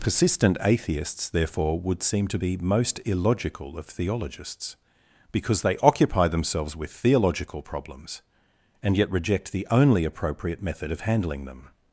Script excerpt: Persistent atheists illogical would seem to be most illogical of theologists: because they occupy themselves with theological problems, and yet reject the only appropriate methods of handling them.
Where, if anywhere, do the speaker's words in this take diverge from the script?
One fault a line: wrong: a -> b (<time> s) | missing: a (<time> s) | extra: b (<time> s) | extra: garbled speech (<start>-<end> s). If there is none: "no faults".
wrong: illogical -> therefore (1.3 s)
wrong: methods -> method (10.6 s)